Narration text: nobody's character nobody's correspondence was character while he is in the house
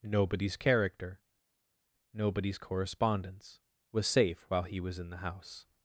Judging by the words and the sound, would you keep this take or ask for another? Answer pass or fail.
fail